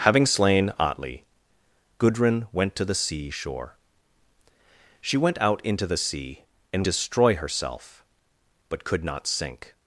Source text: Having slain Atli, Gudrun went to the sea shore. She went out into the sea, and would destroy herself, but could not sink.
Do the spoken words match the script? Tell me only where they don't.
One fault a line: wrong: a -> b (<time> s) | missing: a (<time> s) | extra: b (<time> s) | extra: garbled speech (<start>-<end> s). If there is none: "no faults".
missing: would (6.9 s)